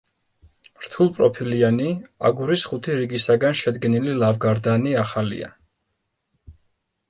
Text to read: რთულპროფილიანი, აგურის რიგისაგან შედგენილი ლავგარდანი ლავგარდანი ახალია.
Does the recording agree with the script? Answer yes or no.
no